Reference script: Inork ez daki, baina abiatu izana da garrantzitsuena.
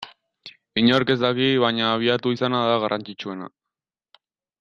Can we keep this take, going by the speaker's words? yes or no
yes